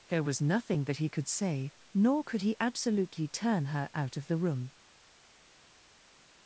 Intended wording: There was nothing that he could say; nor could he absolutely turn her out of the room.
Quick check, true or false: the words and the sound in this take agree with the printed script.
true